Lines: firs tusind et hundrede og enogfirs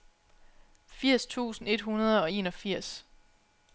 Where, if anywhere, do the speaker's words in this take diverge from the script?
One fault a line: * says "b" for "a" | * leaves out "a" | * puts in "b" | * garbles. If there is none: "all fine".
all fine